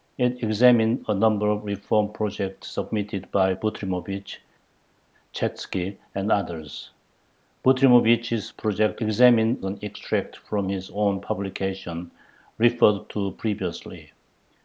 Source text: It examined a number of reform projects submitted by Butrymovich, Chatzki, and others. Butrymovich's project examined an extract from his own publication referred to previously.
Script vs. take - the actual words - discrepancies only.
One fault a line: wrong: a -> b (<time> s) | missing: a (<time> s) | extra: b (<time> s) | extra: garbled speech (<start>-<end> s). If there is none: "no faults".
no faults